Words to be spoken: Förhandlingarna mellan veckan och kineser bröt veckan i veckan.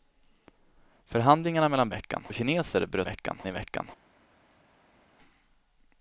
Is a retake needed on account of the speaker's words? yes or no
no